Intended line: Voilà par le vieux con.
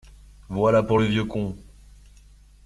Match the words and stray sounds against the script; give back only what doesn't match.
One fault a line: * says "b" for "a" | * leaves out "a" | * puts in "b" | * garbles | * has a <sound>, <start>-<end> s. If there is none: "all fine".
* says "pour" for "par"